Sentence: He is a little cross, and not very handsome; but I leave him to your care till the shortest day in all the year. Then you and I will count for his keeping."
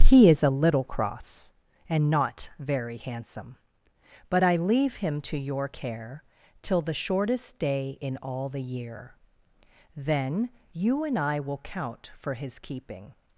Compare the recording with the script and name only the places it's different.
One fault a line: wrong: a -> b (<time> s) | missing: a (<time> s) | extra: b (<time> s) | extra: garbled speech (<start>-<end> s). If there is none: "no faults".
no faults